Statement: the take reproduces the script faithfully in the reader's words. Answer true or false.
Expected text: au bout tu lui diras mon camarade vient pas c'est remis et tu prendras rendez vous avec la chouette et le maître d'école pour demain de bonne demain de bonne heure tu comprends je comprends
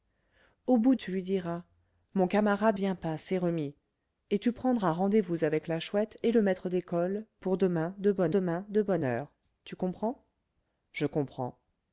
true